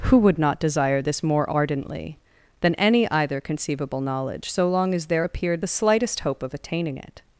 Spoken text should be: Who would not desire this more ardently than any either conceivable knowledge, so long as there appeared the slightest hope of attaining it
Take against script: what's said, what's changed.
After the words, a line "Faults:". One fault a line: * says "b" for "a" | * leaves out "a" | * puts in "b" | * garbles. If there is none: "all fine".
Who would not desire this more ardently than any either conceivable knowledge, so long as there appeared the slightest hope of attaining it
Faults:
all fine